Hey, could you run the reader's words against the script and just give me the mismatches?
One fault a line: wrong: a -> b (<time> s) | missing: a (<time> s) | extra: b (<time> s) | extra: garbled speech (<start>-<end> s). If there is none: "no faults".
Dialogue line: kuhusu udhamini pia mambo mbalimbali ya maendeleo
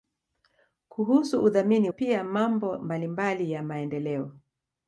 no faults